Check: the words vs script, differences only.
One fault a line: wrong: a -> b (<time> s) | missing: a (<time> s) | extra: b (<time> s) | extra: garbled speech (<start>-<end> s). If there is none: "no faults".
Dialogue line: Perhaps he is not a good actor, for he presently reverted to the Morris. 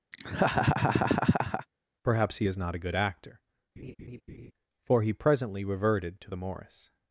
no faults